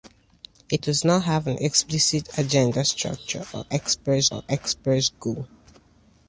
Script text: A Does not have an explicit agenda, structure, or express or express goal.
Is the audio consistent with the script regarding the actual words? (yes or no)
yes